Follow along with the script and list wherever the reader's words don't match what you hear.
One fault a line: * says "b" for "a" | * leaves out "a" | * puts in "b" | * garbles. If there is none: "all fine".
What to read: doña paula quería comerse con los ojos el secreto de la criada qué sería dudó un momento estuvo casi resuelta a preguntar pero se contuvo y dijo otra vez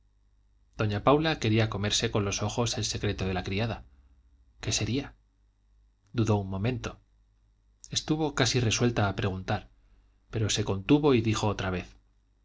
all fine